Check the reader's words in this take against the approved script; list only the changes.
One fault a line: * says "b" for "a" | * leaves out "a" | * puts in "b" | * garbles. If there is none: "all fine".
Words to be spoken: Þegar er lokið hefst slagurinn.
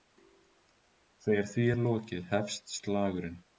* puts in "því"